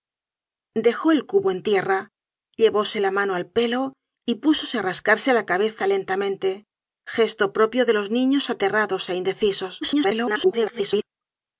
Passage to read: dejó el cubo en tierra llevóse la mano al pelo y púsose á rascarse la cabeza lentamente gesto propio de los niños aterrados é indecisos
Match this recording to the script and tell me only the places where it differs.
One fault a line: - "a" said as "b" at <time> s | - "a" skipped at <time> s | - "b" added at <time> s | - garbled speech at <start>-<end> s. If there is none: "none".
- garbled speech at 9.8-11.0 s